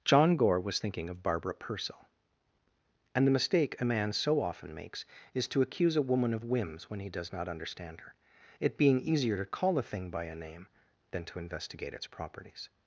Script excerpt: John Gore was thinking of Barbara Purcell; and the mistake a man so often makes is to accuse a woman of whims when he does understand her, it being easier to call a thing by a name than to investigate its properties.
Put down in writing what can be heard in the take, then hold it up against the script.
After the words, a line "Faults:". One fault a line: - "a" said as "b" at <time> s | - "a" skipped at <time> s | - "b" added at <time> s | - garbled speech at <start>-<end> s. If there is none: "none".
John Gore was thinking of Barbara Purcell; and the mistake a man so often makes is to accuse a woman of whims when he does not understand her, it being easier to call a thing by a name than to investigate its properties.
Faults:
- "not" added at 7.3 s